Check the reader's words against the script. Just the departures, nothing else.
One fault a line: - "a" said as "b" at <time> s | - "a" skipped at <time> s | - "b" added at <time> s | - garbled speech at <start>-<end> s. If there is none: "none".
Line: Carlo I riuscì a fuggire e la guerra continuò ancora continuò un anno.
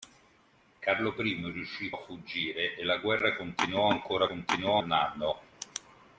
none